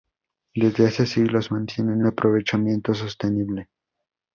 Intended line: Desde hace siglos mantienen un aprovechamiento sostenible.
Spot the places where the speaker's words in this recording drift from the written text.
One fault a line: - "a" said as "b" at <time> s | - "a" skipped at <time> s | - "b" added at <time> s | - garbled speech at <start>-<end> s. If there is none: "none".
- "un" skipped at 2.0 s